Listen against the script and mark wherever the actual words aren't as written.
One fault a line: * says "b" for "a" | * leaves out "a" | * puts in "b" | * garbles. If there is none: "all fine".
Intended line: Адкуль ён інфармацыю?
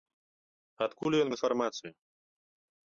all fine